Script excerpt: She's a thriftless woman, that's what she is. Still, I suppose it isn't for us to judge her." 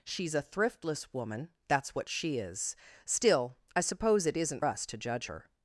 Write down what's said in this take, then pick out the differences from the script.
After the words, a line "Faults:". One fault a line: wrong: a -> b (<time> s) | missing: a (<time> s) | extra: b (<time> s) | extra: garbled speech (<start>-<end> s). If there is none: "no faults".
She's a thriftless woman, that's what she is. Still, I suppose it isn't us to judge her."
Faults:
missing: for (4.7 s)